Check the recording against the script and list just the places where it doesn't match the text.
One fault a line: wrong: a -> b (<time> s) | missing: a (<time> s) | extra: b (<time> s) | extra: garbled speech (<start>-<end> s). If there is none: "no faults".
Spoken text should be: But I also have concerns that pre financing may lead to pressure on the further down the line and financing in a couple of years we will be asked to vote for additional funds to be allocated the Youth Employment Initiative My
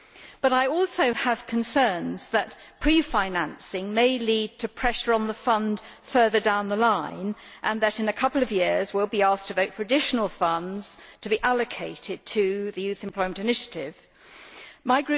extra: fund (5.3 s)
wrong: financing -> that (7.8 s)
extra: to (12.3 s)